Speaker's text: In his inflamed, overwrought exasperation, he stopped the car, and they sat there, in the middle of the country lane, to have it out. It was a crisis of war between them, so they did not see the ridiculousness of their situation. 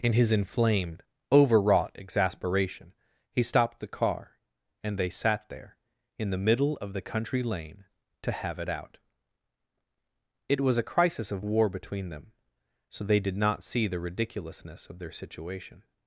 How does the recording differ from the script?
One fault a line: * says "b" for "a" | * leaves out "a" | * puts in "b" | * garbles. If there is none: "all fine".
all fine